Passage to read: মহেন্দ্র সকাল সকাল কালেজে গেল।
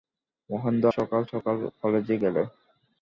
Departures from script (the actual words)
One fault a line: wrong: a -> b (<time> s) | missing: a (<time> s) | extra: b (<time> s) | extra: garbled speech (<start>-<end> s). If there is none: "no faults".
no faults